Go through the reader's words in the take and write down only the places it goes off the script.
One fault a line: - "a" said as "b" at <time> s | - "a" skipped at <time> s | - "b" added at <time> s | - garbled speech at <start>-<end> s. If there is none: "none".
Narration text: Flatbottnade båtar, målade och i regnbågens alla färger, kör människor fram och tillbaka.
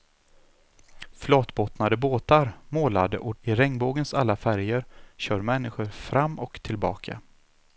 none